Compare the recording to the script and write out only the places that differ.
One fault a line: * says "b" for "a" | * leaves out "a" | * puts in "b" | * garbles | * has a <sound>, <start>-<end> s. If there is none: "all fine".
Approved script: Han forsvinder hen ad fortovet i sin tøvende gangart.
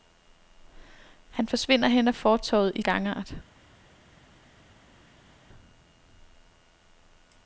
* leaves out "sin tøvende"